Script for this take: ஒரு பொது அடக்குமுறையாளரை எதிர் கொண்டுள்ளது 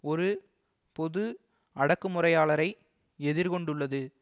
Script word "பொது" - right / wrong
right